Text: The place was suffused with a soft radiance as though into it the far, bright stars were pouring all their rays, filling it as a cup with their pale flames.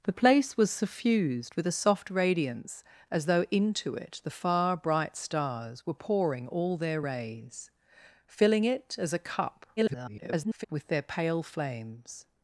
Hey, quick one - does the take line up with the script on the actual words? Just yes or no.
no